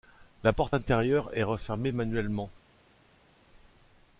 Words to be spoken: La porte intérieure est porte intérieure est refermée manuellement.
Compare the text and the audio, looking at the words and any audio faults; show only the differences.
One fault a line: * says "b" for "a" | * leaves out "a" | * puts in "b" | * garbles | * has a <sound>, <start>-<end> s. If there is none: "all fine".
* leaves out "porte intérieure est"